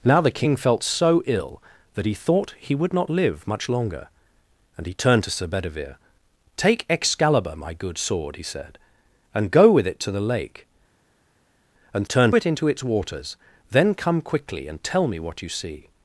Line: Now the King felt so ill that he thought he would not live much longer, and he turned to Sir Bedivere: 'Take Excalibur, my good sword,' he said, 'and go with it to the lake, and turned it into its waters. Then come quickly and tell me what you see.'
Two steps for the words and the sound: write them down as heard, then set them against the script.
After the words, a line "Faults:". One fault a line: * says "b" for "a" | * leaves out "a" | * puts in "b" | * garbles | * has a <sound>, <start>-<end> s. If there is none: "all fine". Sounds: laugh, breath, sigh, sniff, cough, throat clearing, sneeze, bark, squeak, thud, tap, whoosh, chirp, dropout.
Now the King felt so ill that he thought he would not live much longer, and he turned to Sir Bedivere: 'Take Excalibur, my good sword,' he said, 'and go with it to the lake, and turned it into its waters. Then come quickly and tell me what you see.'
Faults:
all fine